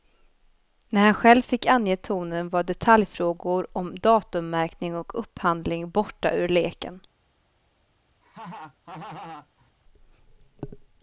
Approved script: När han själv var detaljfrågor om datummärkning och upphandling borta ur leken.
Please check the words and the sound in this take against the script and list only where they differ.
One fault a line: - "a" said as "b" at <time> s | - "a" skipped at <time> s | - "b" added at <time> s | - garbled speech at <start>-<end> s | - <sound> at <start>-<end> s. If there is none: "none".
- "fick ange tonen" added at 1.4 s
- laugh at 8.2-9.7 s